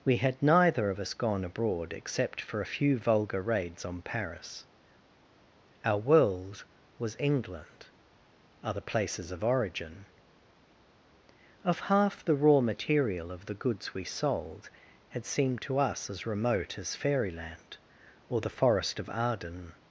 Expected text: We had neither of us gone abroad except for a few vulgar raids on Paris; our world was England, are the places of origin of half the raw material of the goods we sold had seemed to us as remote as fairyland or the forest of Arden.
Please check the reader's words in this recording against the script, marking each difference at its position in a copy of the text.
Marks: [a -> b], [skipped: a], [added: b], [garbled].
We had neither of us gone abroad except for a few vulgar raids on Paris; our world was England, [are the -> other] places of origin of half the raw material of the goods we sold had seemed to us as remote as fairyland or the forest of Arden.